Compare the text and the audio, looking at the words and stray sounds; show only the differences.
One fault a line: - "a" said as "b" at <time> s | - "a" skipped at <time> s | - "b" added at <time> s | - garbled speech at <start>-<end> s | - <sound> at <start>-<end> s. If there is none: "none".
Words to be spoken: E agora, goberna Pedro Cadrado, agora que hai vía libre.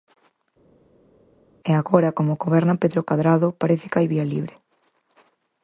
- "como" added at 2.2 s
- "agora" said as "parece" at 3.6 s